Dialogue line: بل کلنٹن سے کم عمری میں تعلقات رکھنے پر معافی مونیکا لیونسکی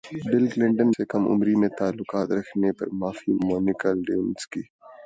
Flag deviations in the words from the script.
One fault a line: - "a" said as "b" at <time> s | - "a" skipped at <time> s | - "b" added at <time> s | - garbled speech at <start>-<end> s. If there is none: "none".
none